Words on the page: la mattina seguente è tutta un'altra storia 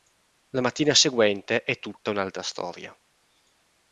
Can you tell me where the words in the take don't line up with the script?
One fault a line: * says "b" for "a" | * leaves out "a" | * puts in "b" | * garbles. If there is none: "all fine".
all fine